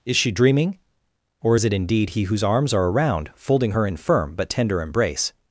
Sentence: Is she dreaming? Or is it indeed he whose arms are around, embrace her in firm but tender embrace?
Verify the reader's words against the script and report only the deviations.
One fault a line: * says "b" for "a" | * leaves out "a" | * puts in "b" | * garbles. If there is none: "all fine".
* says "folding" for "embrace"